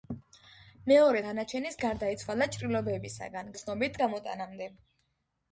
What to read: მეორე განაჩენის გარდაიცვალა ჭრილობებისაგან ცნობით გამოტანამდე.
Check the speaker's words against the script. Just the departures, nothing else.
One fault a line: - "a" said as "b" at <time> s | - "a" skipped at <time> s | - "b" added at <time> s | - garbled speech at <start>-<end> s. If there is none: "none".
none